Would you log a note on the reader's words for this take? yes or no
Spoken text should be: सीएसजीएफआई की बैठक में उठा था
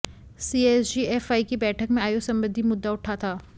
yes